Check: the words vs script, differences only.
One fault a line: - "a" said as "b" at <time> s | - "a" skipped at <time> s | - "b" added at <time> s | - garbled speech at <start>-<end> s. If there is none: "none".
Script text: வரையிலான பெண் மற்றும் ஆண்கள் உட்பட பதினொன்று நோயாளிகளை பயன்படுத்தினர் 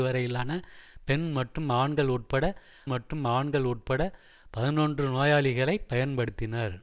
- "மற்றும் ஆண்கள் உட்பட" added at 2.9 s